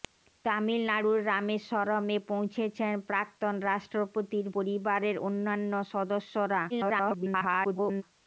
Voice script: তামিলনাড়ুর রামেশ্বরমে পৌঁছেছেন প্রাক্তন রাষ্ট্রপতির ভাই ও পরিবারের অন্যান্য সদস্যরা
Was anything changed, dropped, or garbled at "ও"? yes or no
yes